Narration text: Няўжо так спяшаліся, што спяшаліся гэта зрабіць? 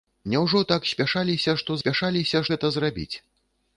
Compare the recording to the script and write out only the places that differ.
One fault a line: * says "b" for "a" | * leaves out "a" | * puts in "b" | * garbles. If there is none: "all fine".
all fine